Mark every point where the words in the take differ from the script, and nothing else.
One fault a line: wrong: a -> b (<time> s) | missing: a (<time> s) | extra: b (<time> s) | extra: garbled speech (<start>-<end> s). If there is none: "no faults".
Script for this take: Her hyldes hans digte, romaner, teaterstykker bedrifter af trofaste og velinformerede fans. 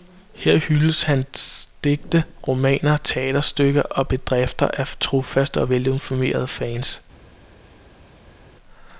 extra: og (3.8 s)